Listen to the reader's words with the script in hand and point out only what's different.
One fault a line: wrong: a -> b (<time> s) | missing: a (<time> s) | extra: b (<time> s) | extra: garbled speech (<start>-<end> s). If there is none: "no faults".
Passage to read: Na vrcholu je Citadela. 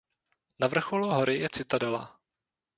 extra: hory (1.1 s)